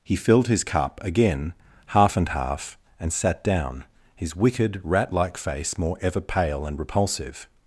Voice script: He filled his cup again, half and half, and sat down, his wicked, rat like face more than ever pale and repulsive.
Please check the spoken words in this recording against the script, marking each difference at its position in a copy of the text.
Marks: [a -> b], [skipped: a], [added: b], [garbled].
He filled his cup again, half and half, and sat down, his wicked, rat like face more [skipped: than] ever pale and repulsive.